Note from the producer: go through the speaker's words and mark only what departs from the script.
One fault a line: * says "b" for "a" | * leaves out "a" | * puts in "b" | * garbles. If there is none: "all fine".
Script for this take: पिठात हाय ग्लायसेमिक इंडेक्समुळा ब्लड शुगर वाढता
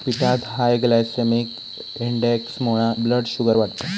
all fine